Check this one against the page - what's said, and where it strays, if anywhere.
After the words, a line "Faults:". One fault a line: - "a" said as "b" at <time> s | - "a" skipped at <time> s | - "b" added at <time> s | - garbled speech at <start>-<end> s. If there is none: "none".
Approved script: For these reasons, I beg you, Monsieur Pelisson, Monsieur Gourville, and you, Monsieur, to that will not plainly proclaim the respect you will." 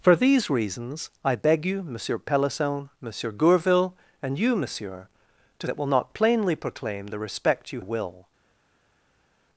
For these reasons, I beg you, Monsieur Pelisson, Monsieur Gourville, and you, Monsieur, to that will not plainly proclaim the respect you will."
Faults:
none